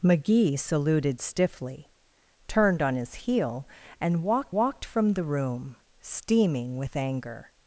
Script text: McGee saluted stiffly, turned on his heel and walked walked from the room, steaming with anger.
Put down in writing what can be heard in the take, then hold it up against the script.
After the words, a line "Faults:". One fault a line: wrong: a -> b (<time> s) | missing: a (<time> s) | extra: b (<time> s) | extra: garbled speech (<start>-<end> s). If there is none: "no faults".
McGee saluted stiffly, turned on his heel and walked walked from the room, steaming with anger.
Faults:
no faults